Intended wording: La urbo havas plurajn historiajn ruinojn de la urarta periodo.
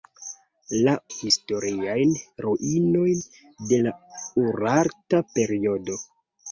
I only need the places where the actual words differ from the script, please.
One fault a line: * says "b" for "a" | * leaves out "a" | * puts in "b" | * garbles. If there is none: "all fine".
* leaves out "urbo havas plurajn"